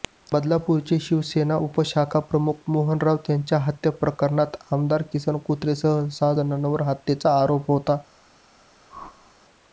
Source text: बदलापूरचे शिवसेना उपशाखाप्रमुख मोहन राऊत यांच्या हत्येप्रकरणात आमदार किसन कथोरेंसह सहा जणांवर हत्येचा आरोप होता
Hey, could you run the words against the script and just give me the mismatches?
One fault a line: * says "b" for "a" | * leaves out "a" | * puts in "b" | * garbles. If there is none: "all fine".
all fine